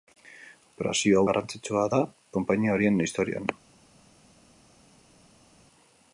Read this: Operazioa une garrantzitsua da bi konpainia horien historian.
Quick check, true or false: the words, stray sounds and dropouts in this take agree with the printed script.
false